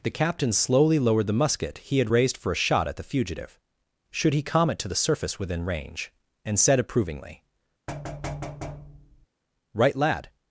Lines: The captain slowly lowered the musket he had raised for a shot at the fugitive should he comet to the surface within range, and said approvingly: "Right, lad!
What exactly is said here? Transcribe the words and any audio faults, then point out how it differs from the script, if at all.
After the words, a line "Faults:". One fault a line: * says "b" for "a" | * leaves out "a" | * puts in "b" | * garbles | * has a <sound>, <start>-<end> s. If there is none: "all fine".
The captain slowly lowered the musket he had raised for a shot at the fugitive should he comet to the surface within range, and said approvingly: "Right, lad!
Faults:
* has a thud, 7.9-9.3 s